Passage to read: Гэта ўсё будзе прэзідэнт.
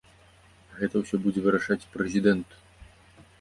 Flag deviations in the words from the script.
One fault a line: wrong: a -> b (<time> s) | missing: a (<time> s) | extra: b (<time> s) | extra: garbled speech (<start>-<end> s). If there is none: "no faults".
extra: вырашаць (1.5 s)